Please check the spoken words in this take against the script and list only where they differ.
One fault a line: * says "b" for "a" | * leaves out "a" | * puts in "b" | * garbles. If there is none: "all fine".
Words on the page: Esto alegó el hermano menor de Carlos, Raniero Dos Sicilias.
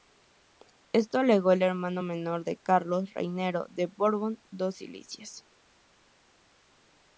* puts in "de Borbón"